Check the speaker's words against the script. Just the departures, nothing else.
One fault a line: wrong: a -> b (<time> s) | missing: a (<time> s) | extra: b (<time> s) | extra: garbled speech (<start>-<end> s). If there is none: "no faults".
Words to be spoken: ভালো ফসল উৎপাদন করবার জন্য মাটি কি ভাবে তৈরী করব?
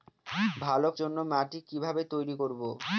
missing: ফসল উৎপাদন করবার (0.9 s)